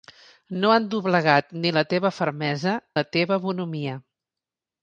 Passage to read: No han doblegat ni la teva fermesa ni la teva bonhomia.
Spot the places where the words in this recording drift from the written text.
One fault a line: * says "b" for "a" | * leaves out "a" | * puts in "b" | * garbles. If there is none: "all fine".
* leaves out "ni"